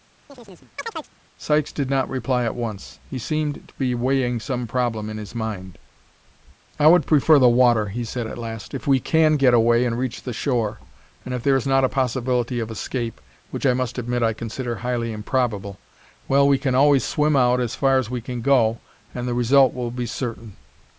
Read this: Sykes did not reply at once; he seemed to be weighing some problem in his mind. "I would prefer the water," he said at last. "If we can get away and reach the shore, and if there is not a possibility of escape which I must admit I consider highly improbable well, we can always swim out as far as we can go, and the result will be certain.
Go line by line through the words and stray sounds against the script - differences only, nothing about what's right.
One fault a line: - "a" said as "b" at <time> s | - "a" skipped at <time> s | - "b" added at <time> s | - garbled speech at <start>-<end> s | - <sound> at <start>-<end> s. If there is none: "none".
- chirp at 0.3-1.2 s